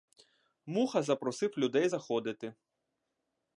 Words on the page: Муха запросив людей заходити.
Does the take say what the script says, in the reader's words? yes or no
yes